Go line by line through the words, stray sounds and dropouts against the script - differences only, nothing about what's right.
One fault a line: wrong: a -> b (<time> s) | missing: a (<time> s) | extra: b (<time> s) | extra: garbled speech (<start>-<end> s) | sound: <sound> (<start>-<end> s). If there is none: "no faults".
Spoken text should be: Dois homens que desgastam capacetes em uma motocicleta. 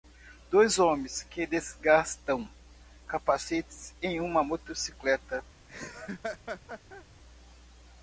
sound: laugh (5.7-7.1 s)